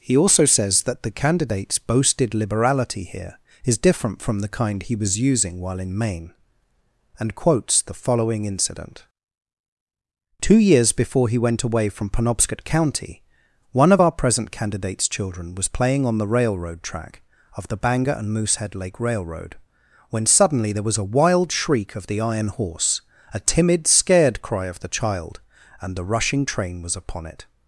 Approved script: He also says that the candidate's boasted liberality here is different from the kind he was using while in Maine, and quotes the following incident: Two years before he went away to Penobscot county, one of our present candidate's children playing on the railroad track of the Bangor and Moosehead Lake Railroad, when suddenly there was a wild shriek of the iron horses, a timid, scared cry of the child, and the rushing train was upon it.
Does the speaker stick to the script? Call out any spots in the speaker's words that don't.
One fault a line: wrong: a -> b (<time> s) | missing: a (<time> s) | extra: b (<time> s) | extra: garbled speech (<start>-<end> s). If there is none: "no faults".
wrong: to -> from (11.9 s)
extra: was (15.6 s)
wrong: horses -> horse (22.5 s)